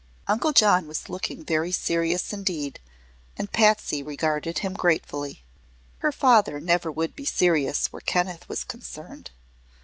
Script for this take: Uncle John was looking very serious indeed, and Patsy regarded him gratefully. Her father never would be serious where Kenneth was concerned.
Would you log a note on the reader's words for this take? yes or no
no